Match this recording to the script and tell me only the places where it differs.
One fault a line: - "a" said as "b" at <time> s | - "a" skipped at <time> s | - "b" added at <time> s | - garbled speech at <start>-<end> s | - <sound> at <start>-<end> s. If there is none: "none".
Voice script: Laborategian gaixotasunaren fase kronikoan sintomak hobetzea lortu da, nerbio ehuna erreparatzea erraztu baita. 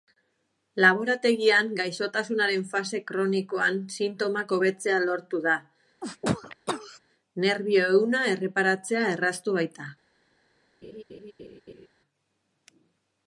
- sneeze at 6.0-7.0 s
- laugh at 10.8-11.9 s